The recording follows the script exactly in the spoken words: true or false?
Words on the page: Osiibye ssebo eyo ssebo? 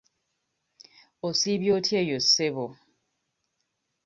false